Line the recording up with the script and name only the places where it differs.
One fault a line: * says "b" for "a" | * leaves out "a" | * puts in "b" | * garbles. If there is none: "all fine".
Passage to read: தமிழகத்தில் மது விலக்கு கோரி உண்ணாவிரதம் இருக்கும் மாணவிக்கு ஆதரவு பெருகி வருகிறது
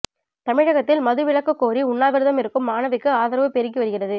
all fine